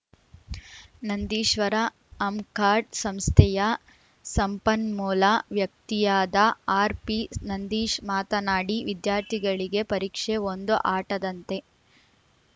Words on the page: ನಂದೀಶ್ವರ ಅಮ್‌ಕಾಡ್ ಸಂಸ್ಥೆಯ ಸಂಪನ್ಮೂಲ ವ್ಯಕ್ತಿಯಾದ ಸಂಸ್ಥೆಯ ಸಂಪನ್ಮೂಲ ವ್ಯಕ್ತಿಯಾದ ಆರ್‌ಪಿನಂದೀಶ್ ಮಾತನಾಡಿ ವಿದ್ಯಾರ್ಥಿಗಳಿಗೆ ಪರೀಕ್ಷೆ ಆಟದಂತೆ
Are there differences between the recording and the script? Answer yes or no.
yes